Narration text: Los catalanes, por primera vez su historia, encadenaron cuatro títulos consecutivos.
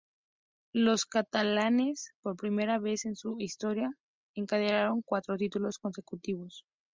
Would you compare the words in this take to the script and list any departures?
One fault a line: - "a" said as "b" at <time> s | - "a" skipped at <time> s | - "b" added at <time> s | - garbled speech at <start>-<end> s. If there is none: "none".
- "en" added at 3.0 s